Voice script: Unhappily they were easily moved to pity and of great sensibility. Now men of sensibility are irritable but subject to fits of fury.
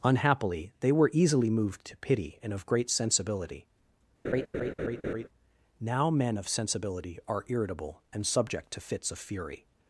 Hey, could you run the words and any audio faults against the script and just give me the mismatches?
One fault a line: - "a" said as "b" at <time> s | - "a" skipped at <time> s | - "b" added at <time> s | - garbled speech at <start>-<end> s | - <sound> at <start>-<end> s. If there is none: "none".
- laugh at 4.2-5.3 s
- "but" said as "and" at 8.1 s